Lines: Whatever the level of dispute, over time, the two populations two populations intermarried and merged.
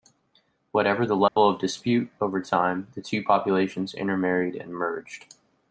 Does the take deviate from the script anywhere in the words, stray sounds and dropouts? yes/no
yes